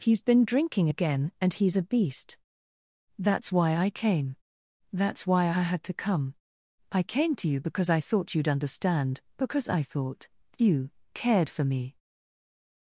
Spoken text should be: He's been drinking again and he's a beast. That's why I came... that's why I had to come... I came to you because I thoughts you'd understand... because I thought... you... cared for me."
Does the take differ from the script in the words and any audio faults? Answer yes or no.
yes